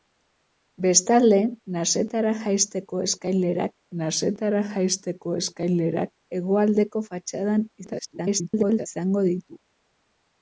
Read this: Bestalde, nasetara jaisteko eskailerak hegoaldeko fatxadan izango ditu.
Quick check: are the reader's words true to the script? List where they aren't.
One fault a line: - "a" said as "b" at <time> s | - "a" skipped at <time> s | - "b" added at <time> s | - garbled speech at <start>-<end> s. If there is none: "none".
- "nasetara jaisteko eskailerak" added at 4.0 s
- garbled speech at 7.8-8.9 s